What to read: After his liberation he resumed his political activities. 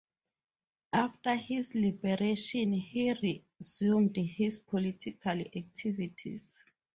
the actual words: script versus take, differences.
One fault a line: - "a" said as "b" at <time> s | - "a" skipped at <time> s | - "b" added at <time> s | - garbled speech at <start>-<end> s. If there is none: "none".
none